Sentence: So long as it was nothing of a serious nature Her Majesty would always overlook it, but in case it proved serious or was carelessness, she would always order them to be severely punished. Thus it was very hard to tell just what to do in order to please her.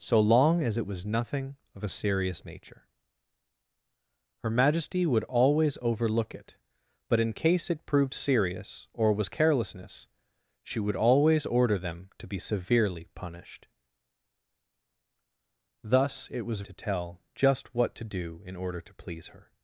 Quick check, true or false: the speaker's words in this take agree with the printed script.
false